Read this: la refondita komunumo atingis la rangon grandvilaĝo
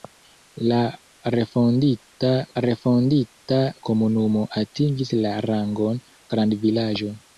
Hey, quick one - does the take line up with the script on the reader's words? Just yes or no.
no